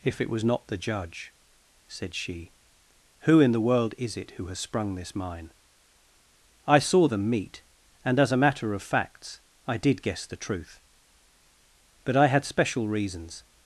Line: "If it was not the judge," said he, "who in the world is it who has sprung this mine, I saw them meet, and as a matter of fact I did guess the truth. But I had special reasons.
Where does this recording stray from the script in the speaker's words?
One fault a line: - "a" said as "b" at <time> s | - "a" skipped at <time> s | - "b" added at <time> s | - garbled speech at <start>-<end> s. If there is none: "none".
- "he" said as "she" at 2.1 s
- "fact" said as "facts" at 8.8 s